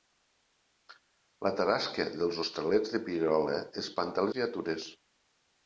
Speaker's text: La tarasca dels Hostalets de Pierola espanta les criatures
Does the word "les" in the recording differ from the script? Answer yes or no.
yes